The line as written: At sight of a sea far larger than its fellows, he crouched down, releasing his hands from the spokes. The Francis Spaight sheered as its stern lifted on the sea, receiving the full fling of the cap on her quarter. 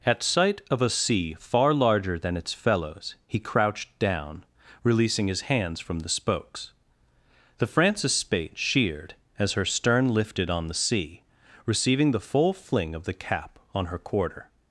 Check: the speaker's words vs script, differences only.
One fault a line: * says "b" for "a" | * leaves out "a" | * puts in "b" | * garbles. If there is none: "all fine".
* says "her" for "its"